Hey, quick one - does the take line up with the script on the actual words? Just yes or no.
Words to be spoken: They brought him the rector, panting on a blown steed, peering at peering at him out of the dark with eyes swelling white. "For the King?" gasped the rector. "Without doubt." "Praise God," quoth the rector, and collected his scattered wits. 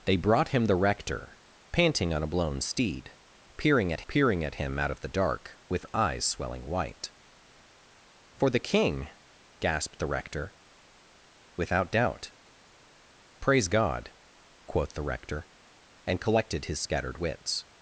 yes